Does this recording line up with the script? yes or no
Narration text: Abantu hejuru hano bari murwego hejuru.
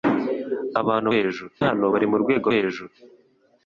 yes